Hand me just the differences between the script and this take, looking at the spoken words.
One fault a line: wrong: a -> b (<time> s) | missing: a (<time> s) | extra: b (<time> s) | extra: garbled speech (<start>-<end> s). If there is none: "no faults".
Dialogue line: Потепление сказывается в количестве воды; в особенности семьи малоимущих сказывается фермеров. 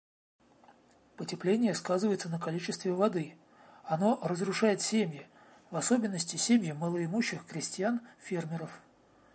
wrong: в -> на (2.3 s)
extra: оно разрушает семьи (3.8 s)
wrong: сказывается -> крестьян (7.5 s)